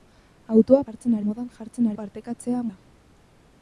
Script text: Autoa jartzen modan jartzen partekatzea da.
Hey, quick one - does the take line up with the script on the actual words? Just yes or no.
yes